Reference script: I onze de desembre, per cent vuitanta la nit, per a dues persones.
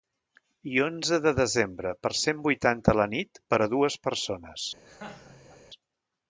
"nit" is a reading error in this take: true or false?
false